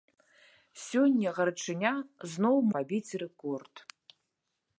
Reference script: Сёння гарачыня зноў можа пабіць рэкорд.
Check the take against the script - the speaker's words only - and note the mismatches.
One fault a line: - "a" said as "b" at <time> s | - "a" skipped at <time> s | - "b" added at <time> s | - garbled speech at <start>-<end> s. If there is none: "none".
- "можа" skipped at 2.5 s